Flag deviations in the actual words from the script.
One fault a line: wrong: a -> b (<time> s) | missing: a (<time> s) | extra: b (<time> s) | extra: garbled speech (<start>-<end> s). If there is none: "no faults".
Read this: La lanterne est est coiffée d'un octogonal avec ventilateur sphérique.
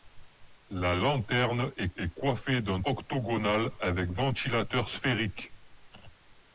no faults